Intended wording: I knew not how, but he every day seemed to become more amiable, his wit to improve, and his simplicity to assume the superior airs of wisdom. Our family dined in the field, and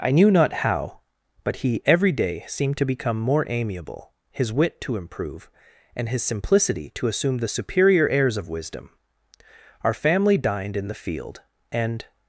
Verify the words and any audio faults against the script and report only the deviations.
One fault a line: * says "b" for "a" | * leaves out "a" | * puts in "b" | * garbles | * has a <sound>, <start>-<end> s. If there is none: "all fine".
all fine